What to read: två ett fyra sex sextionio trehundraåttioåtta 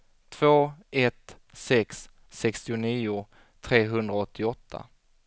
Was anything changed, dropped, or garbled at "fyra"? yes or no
yes